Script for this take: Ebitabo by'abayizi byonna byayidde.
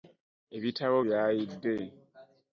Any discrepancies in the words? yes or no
yes